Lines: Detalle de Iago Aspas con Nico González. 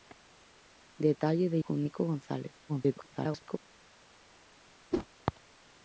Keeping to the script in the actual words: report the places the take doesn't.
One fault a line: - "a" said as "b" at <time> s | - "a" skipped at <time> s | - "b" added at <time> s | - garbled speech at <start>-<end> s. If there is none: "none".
- "Iago Aspas" skipped at 1.6 s
- garbled speech at 2.7-3.6 s